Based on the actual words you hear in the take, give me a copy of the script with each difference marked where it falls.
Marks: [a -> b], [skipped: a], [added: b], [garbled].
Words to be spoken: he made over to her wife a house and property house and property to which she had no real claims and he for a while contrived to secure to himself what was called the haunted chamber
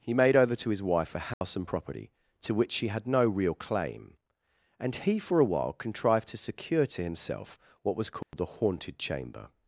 he made over to [her -> his] wife a house and property [skipped: house and property] to which she had no real [claims -> claim] and he for a while contrived to secure to himself what was called the haunted chamber